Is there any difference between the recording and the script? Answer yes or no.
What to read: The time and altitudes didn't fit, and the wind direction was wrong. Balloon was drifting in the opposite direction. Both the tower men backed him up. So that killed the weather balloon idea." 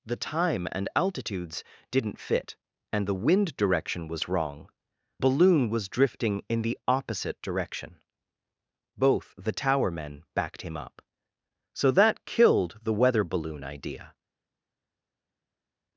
no